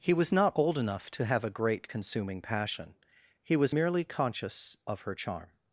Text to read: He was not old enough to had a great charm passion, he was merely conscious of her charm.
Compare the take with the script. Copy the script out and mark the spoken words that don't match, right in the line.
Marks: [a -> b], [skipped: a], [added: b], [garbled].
He was not old enough to [had -> have] a great [charm -> consuming] passion, he was merely conscious of her charm.